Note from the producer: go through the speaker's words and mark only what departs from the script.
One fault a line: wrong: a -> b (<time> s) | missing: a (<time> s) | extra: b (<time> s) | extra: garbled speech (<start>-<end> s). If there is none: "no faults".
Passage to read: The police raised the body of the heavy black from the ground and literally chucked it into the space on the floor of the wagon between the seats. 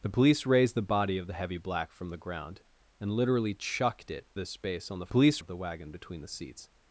missing: into (4.3 s)
wrong: floor -> police (5.1 s)